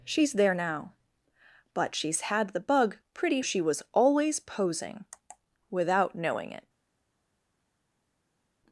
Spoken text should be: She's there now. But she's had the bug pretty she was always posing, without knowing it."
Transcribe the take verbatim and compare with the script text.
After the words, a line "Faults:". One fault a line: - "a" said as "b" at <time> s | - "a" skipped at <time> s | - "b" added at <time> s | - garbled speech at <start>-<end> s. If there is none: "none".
She's there now. But she's had the bug pretty she was always posing, without knowing it."
Faults:
none